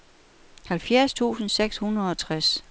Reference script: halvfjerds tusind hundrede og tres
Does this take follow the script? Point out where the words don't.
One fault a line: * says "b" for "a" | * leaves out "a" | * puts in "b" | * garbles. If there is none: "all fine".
* puts in "seks"